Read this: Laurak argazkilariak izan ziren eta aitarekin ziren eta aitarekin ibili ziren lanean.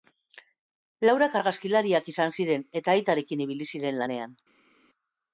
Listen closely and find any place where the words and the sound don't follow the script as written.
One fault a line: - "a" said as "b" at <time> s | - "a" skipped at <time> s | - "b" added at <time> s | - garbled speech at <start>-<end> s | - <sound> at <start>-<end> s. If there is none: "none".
- "ziren eta aitarekin" skipped at 3.5 s